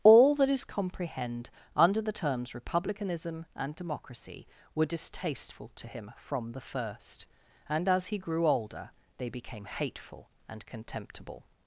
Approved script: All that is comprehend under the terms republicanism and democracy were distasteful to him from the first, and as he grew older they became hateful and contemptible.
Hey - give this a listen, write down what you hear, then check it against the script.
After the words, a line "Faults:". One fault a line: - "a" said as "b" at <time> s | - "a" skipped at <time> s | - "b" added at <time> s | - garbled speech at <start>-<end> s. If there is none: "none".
All that is comprehend under the terms republicanism and democracy were distasteful to him from the first, and as he grew older they became hateful and contemptible.
Faults:
none